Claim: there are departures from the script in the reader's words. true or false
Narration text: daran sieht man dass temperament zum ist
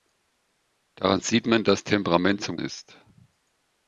false